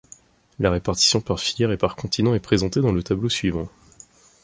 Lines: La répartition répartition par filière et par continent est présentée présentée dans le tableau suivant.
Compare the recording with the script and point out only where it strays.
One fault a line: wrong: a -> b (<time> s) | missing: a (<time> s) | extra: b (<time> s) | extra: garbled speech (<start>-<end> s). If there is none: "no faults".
missing: répartition (1.2 s)
missing: présentée (2.8 s)